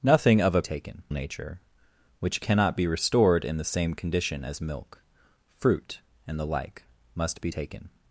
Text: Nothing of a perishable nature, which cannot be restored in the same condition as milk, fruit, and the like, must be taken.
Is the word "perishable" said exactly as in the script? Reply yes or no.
no